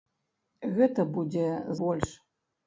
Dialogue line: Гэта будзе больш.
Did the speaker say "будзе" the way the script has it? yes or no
yes